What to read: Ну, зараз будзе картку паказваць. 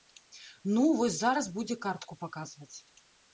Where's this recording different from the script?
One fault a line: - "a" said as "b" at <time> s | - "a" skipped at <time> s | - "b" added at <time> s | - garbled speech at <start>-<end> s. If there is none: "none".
- "вось" added at 1.0 s